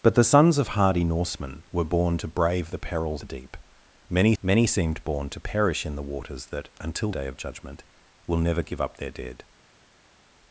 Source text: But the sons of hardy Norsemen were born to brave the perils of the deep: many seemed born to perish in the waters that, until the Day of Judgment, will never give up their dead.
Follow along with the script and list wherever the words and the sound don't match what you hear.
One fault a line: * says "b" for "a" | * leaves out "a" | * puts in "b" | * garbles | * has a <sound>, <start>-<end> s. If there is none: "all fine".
* leaves out "of"
* puts in "many"
* leaves out "the"